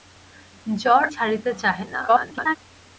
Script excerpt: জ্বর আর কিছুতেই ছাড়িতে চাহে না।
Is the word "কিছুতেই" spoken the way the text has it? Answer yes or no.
no